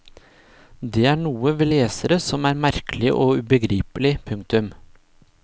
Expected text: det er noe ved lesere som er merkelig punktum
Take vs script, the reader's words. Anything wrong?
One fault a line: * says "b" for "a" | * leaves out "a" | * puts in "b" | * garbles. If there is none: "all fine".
* puts in "og ubegripelig"